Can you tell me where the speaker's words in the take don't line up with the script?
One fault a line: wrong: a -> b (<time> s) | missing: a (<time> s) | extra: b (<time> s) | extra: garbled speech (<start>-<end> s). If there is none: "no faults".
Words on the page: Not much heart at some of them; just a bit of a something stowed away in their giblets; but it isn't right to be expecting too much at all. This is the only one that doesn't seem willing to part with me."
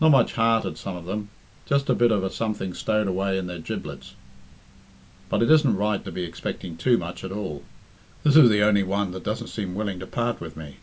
no faults